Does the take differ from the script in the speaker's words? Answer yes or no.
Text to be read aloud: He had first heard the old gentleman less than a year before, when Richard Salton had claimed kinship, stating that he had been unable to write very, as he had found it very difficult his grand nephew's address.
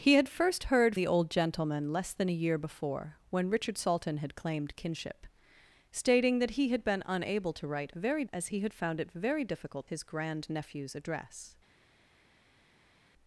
no